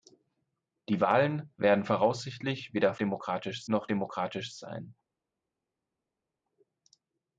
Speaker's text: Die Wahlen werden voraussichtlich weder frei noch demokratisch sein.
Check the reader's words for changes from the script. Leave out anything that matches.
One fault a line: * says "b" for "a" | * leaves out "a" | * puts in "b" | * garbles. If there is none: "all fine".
* says "demokratisch" for "frei"